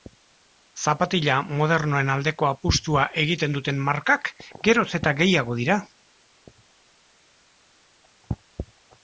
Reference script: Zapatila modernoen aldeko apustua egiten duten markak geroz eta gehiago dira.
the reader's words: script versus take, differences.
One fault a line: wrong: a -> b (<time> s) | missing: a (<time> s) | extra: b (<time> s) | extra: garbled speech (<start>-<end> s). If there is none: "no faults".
no faults